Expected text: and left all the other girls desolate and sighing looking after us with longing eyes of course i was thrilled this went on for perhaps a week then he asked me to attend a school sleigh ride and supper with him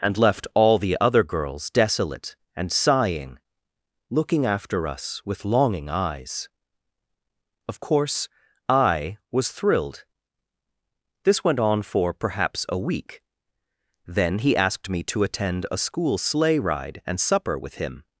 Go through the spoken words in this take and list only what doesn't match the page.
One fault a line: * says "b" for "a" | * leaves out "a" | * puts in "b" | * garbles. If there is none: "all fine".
all fine